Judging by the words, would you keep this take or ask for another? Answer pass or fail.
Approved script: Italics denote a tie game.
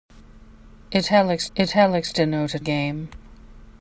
fail